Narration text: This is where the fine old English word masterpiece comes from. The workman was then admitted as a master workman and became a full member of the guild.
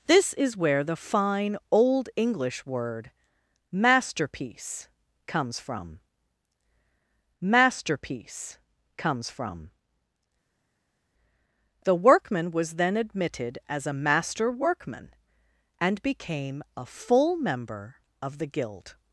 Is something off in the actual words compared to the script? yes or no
yes